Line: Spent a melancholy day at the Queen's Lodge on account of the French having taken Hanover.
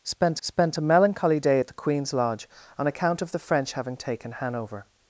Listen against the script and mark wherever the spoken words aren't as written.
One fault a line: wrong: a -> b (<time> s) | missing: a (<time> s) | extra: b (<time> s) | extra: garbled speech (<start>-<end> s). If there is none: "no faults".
extra: spent (0.4 s)